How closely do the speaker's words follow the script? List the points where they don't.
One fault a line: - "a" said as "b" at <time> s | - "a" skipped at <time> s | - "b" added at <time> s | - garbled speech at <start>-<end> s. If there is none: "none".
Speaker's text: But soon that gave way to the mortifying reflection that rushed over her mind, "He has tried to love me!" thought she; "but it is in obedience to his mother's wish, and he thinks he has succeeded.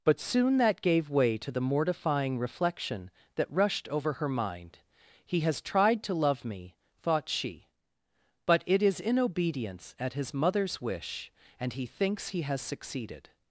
- "to" said as "at" at 10.0 s